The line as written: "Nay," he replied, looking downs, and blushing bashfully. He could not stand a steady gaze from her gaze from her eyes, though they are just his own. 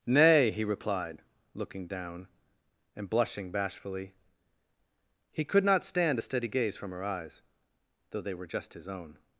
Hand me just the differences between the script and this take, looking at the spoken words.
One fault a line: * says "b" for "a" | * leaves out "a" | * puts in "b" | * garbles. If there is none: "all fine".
* says "down" for "downs"
* leaves out "gaze from her"
* says "were" for "are"